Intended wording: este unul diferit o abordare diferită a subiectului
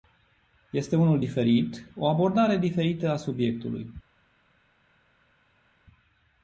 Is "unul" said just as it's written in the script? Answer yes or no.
yes